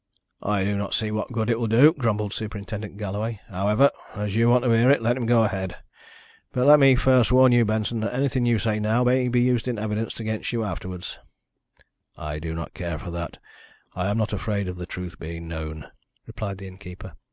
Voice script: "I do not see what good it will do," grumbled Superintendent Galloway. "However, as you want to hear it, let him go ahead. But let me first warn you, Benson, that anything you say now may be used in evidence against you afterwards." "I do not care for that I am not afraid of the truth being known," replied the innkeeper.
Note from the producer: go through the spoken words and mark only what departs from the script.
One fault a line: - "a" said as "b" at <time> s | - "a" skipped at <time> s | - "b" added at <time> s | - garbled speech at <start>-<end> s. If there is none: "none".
none